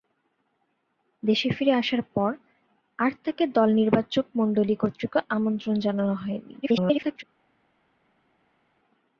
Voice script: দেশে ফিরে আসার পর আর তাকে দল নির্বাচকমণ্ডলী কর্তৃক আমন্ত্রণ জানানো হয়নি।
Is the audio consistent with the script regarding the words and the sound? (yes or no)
no